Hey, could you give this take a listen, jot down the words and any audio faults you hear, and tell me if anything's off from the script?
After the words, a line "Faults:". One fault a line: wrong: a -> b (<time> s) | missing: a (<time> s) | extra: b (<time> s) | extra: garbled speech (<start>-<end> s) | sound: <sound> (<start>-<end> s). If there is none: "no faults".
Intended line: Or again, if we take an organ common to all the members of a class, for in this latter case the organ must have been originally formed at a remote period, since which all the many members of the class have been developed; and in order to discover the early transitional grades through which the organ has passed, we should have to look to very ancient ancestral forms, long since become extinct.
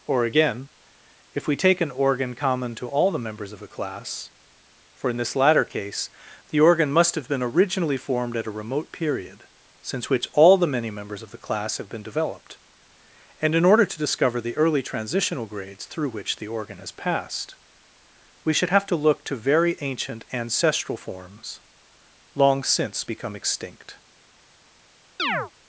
Or again, if we take an organ common to all the members of a class, for in this latter case the organ must have been originally formed at a remote period, since which all the many members of the class have been developed; and in order to discover the early transitional grades through which the organ has passed, we should have to look to very ancient ancestral forms, long since become extinct.
Faults:
sound: chirp (25.2-25.5 s)